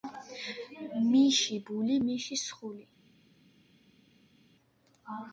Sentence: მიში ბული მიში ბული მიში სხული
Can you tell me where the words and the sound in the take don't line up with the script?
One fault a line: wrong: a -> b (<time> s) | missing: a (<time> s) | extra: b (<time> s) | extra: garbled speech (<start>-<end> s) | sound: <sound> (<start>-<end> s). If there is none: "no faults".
missing: ბული მიში (2.4 s)